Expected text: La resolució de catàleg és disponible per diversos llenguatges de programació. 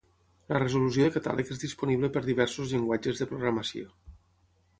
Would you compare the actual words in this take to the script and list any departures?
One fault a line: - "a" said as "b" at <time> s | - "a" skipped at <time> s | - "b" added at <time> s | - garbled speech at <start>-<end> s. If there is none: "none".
none